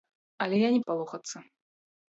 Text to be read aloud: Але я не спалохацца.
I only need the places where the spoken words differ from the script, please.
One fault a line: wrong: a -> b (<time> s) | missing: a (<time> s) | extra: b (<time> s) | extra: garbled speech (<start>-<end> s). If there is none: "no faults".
no faults